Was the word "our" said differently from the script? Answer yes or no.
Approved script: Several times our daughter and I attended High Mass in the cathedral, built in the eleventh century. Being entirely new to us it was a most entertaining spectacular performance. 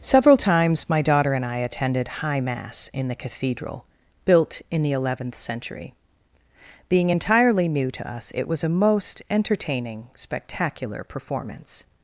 yes